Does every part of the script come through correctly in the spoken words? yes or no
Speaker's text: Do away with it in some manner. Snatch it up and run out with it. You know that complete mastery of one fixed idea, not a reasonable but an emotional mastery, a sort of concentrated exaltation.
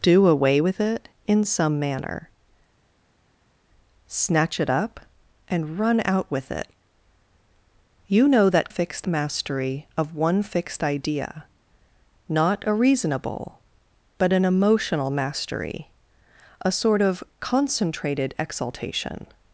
no